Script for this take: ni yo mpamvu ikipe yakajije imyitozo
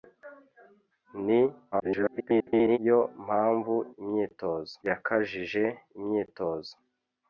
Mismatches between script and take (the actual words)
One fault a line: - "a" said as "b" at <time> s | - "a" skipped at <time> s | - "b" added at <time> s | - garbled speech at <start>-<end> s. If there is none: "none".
- garbled speech at 1.7-2.8 s
- "ikipe" said as "imyitozo" at 4.0 s